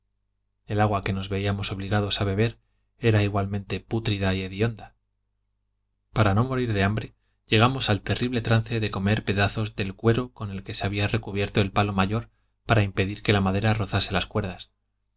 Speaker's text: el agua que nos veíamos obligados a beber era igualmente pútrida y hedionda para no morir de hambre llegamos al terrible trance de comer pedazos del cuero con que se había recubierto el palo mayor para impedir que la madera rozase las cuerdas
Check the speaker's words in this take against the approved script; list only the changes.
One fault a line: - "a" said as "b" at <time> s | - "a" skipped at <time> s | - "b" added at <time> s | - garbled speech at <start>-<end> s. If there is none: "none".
none